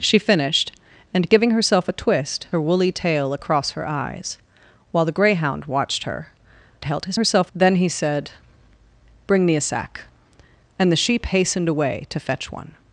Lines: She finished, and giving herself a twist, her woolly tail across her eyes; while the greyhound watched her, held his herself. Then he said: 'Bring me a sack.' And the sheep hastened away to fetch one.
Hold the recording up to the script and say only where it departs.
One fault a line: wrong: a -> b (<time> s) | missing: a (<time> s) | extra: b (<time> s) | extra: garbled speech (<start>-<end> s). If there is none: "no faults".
no faults